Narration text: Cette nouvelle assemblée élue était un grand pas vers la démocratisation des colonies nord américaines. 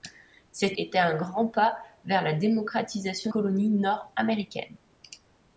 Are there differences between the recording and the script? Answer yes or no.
yes